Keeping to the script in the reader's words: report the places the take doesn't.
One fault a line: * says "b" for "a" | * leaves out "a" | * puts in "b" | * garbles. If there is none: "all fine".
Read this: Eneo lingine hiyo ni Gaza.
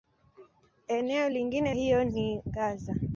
all fine